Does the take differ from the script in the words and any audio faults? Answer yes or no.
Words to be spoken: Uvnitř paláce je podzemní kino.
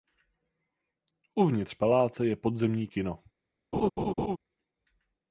yes